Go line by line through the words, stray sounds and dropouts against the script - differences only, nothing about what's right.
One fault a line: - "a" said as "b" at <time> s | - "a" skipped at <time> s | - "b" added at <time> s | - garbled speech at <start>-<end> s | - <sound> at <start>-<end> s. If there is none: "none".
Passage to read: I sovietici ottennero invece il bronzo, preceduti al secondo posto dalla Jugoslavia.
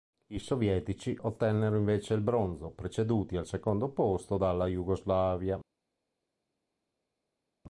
none